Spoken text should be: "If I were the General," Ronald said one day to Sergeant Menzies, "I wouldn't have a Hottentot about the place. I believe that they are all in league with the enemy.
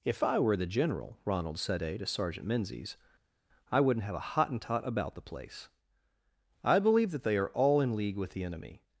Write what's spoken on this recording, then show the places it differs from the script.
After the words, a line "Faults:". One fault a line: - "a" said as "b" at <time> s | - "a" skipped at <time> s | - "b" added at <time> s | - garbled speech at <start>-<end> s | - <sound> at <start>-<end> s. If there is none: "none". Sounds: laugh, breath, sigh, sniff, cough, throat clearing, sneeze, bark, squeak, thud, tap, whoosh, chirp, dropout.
"If I were the General," Ronald said day to Sergeant Menzies, "I wouldn't have a Hottentot about the place. I believe that they are all in league with the enemy.
Faults:
- "one" skipped at 1.8 s